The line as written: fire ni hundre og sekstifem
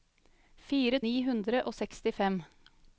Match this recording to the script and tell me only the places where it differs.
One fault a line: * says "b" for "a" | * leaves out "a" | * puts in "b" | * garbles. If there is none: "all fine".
all fine